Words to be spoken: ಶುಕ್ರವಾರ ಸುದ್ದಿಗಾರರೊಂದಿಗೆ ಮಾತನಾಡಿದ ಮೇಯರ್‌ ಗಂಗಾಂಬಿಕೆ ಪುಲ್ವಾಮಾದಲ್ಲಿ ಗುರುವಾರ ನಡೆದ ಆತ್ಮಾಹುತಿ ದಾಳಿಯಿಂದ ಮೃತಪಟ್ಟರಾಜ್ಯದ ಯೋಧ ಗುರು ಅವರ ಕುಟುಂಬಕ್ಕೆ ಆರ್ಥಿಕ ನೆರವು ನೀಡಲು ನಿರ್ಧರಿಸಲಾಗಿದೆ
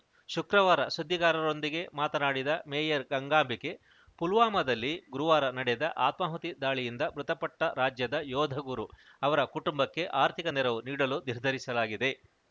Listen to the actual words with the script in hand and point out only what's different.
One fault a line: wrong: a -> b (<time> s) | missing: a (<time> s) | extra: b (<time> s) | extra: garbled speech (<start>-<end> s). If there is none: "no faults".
no faults